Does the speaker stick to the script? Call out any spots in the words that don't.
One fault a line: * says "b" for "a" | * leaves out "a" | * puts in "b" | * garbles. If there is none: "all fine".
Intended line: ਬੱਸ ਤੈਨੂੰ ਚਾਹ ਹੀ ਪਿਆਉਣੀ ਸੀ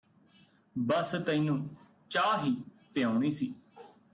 all fine